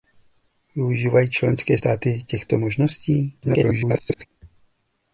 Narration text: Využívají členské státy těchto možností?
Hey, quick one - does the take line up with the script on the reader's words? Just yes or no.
no